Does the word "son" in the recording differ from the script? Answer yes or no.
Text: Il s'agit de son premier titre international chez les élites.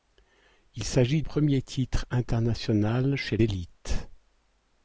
yes